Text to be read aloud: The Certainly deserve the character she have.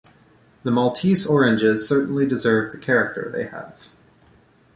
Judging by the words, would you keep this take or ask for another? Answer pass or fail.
fail